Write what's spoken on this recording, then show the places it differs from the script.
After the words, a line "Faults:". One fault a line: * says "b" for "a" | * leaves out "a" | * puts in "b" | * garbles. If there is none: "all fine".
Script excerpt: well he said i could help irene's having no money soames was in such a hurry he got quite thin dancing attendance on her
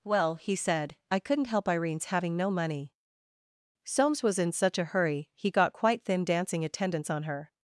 well he said i couldn't help irene's having no money soames was in such a hurry he got quite thin dancing attendance on her
Faults:
* says "couldn't" for "could"